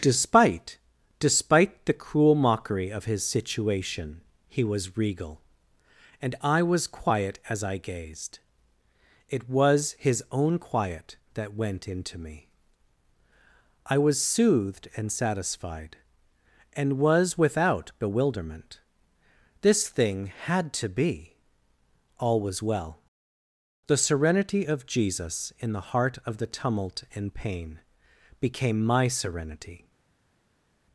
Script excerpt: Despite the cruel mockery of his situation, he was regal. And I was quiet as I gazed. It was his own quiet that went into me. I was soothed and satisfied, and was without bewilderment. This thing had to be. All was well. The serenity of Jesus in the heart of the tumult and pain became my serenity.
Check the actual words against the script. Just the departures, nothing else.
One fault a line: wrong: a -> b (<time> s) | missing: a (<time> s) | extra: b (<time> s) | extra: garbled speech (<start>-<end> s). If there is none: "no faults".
extra: despite (1.2 s)